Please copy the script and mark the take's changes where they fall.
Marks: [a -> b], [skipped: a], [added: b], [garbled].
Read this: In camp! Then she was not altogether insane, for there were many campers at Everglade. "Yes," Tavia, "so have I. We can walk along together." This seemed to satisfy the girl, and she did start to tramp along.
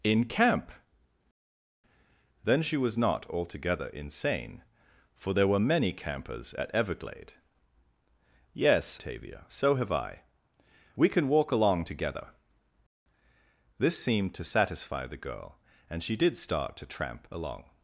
In camp! Then she was not altogether insane, for there were many campers at Everglade. "Yes," Tavia, "so have I. We can walk along together." This seemed to satisfy the girl, and she did start to tramp along.